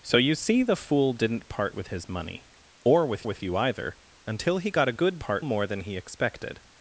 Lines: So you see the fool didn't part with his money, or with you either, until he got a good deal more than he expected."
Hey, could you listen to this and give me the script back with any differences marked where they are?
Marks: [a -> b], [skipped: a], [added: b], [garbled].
So you see the fool didn't part with his money, or with [added: with] you either, until he got a good [deal -> part] more than he expected."